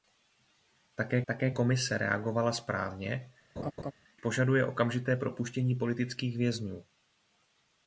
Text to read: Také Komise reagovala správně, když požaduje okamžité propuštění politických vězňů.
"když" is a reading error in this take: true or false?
true